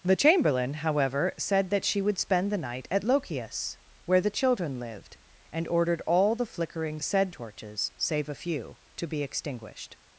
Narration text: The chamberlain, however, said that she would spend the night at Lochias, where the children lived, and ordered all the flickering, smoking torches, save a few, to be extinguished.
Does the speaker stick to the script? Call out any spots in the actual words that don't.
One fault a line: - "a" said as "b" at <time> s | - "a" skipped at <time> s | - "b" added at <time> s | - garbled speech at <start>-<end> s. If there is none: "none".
- "smoking" said as "said" at 7.0 s